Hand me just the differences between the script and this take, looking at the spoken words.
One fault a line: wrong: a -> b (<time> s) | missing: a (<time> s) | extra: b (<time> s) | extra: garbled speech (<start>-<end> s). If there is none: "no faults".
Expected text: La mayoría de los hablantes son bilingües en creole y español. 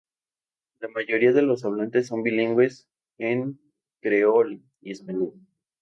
no faults